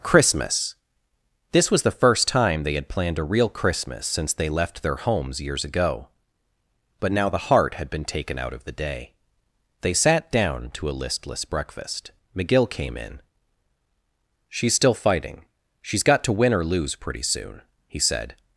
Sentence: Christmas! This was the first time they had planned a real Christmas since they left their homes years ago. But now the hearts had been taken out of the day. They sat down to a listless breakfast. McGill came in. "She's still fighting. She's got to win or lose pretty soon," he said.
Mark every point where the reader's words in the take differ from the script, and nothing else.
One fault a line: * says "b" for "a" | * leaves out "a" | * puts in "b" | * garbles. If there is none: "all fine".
* says "heart" for "hearts"